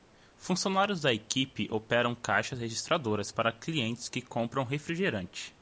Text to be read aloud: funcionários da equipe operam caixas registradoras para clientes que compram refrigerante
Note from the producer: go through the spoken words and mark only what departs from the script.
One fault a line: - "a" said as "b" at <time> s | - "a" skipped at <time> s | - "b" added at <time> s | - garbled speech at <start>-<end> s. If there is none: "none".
none